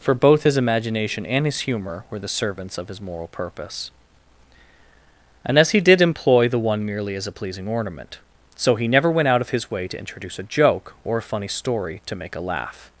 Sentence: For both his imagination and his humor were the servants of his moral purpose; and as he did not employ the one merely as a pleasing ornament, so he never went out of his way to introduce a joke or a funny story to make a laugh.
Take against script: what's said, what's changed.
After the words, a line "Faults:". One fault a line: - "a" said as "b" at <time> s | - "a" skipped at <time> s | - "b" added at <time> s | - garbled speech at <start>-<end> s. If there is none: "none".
For both his imagination and his humor were the servants of his moral purpose; and as he did employ the one merely as a pleasing ornament, so he never went out of his way to introduce a joke or a funny story to make a laugh.
Faults:
- "not" skipped at 6.0 s